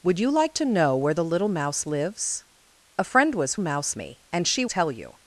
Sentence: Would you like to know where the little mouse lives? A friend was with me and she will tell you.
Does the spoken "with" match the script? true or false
false